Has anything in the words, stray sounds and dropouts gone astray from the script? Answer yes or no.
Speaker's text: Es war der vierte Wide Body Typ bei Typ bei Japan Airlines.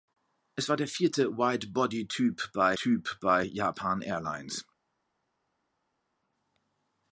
no